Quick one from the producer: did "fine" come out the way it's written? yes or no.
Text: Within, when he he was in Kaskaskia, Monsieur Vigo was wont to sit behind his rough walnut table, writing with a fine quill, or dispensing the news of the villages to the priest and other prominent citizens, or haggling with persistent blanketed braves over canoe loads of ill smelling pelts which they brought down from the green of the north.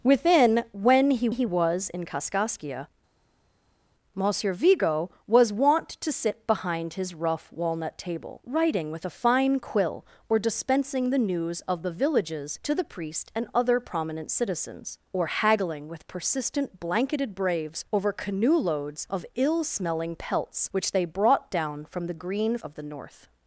yes